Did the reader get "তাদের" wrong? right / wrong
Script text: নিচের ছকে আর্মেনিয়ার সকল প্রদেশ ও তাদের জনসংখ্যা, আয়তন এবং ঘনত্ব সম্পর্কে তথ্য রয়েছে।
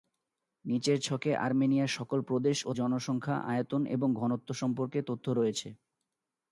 wrong